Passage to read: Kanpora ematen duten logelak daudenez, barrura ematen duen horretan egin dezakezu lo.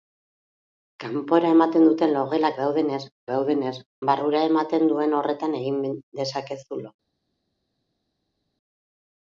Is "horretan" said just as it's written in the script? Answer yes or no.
yes